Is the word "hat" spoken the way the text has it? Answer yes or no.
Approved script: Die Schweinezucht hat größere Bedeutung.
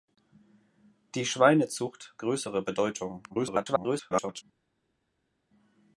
no